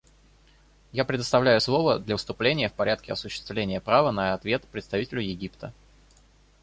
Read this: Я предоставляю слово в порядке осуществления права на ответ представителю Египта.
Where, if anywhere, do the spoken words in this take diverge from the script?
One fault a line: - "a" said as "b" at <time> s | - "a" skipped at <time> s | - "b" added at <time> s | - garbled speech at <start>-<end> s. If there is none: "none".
- "для выступления" added at 2.0 s